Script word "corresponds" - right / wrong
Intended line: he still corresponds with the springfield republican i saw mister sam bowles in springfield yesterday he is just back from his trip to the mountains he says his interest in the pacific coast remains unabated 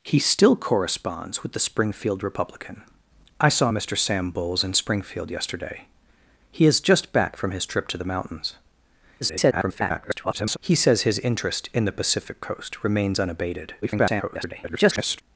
right